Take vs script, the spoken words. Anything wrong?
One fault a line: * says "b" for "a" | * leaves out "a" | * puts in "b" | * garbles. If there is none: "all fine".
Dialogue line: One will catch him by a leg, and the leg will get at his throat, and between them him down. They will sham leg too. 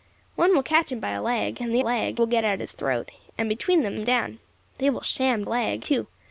all fine